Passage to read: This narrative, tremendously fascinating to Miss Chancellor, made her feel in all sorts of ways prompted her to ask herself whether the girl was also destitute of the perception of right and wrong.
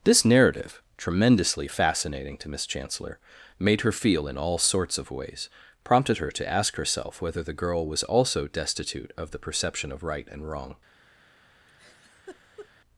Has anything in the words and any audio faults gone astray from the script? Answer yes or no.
yes